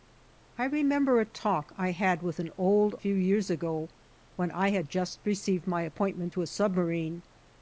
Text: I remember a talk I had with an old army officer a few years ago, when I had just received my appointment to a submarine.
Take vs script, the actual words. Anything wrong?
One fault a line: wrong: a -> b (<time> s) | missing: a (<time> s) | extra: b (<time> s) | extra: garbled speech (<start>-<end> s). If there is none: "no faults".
missing: army officer a (3.0 s)